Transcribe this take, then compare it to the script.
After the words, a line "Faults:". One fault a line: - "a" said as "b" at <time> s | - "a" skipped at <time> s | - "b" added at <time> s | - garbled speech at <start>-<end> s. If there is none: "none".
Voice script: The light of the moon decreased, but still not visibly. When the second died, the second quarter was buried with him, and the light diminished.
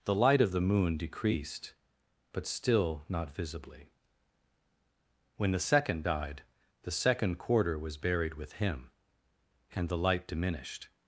The light of the moon decreased, but still not visibly. When the second died, the second quarter was buried with him, and the light diminished.
Faults:
none